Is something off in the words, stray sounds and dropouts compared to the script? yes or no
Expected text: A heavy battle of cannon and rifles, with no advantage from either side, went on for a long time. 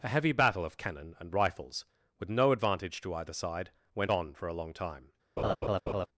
yes